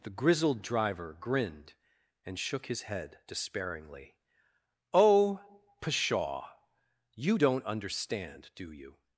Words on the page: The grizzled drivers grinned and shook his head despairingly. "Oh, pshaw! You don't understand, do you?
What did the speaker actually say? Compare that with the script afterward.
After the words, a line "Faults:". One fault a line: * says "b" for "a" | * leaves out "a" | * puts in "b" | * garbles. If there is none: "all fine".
The grizzled driver grinned and shook his head despairingly. "Oh, pshaw! You don't understand, do you?
Faults:
* says "driver" for "drivers"